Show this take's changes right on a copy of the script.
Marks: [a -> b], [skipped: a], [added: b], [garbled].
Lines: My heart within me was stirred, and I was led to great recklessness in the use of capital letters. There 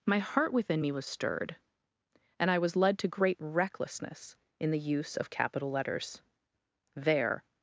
My heart within me was stirred, and I was led to great recklessness in the use of capital letters. There